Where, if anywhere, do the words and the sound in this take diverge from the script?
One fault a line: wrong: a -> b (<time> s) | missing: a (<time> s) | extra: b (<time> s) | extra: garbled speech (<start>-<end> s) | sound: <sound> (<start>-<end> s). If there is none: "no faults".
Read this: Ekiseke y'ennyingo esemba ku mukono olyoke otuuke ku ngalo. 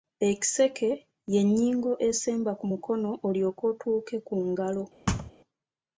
sound: thud (5.1-5.3 s)